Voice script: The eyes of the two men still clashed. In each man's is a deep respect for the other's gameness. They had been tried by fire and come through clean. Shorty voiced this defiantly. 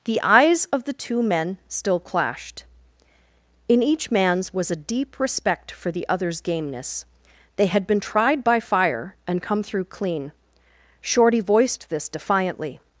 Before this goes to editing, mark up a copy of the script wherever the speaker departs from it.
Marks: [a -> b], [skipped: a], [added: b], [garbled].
The eyes of the two men still clashed. In each man's [is -> was] a deep respect for the other's gameness. They had been tried by fire and come through clean. Shorty voiced this defiantly.